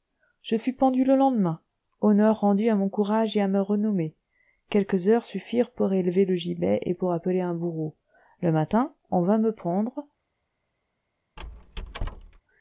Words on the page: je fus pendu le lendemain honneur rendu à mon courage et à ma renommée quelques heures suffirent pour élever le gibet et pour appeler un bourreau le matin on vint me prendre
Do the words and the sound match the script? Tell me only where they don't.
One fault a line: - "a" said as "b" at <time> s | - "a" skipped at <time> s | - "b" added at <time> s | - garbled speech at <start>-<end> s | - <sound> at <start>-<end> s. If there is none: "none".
- squeak at 11.4-12.4 s